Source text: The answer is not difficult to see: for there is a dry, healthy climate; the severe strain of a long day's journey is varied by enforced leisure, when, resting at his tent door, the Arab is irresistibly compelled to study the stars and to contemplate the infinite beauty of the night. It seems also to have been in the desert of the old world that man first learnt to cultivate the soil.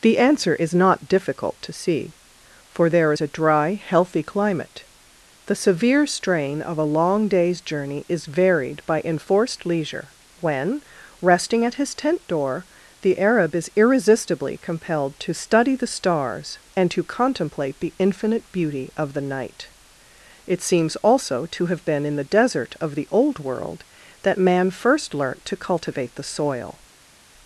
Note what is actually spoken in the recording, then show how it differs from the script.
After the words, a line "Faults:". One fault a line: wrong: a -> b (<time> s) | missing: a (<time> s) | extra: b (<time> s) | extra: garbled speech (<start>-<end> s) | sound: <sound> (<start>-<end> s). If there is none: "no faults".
The answer is not difficult to see: for there is a dry, healthy climate; the severe strain of a long day's journey is varied by enforced leisure, when, resting at his tent door, the Arab is irresistibly compelled to study the stars and to contemplate the infinite beauty of the night. It seems also to have been in the desert of the old world that man first learnt to cultivate the soil.
Faults:
no faults